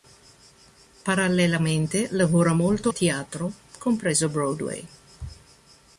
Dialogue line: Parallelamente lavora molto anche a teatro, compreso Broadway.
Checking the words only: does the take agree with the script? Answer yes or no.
no